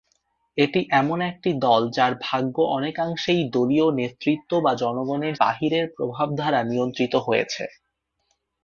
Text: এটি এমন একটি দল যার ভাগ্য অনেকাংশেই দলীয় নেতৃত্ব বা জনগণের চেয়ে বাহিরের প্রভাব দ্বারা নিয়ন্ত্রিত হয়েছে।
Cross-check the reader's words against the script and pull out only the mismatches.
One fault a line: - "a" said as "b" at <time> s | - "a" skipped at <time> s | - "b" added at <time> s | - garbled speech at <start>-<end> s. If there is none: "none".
- "চেয়ে" skipped at 5.3 s